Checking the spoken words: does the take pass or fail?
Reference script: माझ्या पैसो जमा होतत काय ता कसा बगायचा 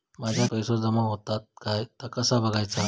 pass